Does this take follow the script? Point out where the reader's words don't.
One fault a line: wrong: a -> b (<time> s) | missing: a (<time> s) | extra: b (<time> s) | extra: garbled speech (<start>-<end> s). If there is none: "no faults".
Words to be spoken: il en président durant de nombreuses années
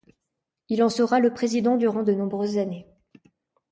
extra: sera le (0.9 s)